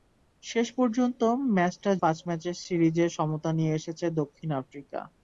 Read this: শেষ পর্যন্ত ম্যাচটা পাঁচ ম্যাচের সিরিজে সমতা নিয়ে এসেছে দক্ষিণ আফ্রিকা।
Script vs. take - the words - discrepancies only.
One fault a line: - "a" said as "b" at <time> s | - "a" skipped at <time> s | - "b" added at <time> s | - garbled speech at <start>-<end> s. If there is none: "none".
none